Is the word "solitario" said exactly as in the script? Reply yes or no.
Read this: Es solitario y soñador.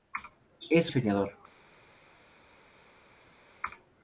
no